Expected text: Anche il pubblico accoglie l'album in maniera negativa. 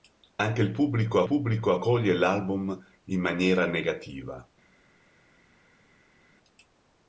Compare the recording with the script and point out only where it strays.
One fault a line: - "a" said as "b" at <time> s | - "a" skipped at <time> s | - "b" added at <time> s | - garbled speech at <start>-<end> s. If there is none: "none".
- "pubblico" added at 1.2 s